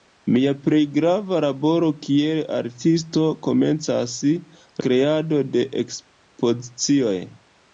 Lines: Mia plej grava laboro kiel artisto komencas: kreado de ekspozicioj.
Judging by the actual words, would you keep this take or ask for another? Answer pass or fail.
pass